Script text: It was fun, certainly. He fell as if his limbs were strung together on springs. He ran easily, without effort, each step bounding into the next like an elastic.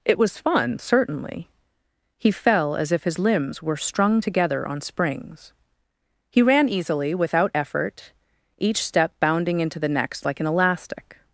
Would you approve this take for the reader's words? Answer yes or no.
yes